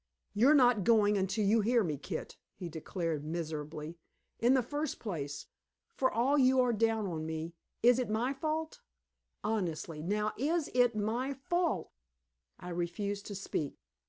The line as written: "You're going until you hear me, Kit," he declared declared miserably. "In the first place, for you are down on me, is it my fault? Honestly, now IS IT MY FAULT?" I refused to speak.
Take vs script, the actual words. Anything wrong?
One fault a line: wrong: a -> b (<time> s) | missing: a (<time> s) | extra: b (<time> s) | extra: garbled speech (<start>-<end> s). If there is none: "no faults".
extra: not (0.6 s)
missing: declared (3.2 s)
extra: all (6.1 s)